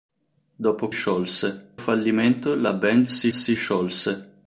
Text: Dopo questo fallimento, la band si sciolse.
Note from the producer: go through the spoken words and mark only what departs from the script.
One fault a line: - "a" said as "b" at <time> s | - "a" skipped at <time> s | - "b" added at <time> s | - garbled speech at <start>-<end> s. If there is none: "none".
- "questo" said as "sciolse" at 0.9 s
- "si" added at 3.3 s